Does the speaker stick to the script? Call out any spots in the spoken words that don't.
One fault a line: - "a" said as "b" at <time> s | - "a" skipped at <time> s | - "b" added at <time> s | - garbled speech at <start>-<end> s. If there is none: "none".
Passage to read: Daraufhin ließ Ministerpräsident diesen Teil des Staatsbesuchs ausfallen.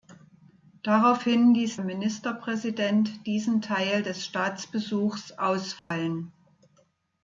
none